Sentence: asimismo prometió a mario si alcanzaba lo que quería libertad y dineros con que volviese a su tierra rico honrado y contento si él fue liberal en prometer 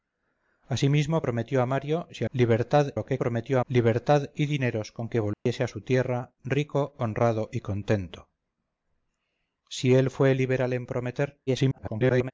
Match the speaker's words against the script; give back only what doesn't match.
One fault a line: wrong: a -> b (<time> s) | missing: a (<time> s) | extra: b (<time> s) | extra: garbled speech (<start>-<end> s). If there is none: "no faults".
wrong: alcanzaba -> libertad (2.3 s)
wrong: quería -> prometió (3.2 s)
extra: garbled speech (11.5-12.3 s)